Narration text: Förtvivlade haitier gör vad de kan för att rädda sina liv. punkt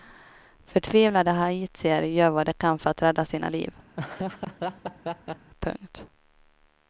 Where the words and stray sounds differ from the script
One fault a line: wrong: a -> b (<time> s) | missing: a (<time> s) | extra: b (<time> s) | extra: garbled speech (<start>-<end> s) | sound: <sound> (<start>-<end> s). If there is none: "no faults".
sound: laugh (4.0-5.5 s)